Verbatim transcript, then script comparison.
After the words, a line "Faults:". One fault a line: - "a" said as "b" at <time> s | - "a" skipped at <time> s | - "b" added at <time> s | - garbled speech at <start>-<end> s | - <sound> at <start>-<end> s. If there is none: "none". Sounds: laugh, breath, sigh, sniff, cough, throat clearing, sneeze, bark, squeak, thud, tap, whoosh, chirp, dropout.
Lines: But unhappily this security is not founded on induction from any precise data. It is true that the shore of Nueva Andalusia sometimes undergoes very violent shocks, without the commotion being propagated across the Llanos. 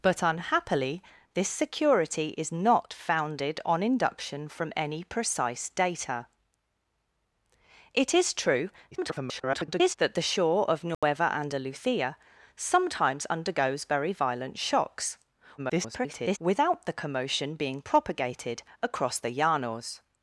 But unhappily this security is not founded on induction from any precise data. It is true [garbled] that the shore of Nueva Andalusia sometimes undergoes very violent shocks, [garbled] without the commotion being propagated across the Llanos.
Faults:
- garbled speech at 8.9-9.9 s
- dropout at 10.9-11.0 s
- garbled speech at 15.6-16.4 s